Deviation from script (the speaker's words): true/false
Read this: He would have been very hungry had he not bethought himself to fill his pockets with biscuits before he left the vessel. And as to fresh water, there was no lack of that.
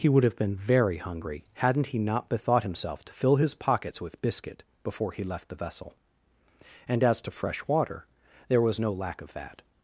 true